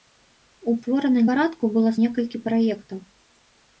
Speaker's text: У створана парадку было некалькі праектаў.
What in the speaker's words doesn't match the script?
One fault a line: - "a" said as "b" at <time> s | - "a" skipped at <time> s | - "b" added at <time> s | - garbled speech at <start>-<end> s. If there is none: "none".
none